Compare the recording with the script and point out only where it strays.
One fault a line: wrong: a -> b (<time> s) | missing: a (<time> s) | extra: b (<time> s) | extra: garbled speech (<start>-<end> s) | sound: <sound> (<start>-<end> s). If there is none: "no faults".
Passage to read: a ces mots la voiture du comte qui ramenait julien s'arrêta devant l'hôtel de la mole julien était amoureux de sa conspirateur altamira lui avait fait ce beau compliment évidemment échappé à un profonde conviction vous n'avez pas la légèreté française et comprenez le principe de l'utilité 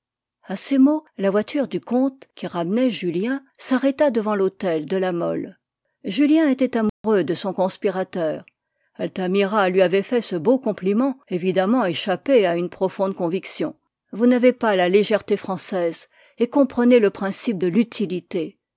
sound: dropout (6.9-7.0 s)
wrong: sa -> son (7.3 s)
wrong: un -> une (12.5 s)